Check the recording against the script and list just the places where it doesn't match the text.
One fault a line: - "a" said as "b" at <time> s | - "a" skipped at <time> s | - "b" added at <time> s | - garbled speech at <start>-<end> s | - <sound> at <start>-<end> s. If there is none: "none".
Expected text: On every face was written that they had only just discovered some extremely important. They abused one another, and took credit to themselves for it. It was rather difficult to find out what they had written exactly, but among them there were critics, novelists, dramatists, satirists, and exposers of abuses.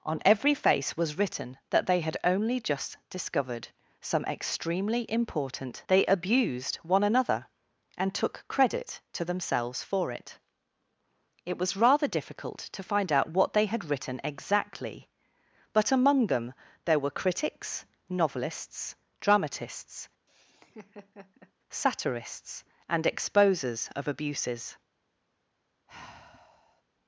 - laugh at 20.3-21.5 s
- sigh at 25.9-26.8 s